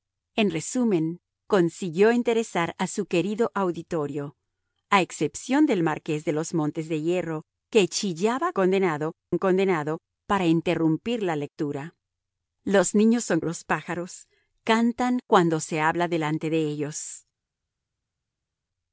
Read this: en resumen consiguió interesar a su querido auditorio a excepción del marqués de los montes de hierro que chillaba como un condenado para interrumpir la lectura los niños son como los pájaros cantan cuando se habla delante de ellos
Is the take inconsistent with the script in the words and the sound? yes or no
yes